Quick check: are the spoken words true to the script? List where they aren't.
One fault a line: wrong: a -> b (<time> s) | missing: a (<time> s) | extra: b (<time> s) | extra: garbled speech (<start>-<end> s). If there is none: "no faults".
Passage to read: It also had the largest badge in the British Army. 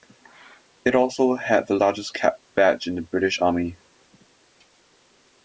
extra: cap (2.1 s)